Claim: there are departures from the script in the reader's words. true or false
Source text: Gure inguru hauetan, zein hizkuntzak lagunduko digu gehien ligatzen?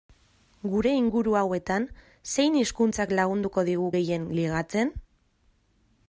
false